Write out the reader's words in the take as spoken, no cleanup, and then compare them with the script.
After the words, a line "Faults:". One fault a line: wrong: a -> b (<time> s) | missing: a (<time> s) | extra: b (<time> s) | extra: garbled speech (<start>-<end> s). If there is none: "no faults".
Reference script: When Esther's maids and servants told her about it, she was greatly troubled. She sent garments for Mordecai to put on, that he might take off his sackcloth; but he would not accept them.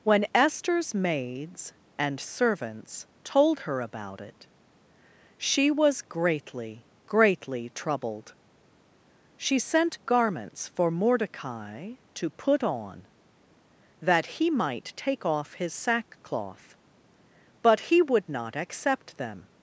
When Esther's maids and servants told her about it, she was greatly greatly troubled. She sent garments for Mordecai to put on, that he might take off his sackcloth; but he would not accept them.
Faults:
extra: greatly (7.0 s)